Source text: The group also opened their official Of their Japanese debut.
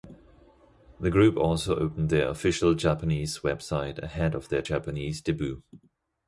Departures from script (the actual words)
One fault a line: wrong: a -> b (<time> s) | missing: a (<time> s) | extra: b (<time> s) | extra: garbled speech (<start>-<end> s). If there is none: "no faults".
extra: Japanese website ahead (2.7 s)